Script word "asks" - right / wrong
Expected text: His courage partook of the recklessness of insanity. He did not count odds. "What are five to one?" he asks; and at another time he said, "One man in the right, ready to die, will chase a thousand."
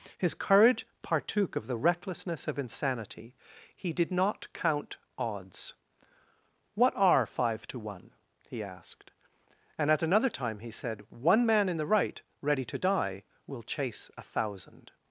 wrong